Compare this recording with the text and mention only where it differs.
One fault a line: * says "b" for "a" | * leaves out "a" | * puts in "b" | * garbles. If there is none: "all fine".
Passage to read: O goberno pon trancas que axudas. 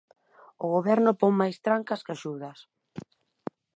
* puts in "máis"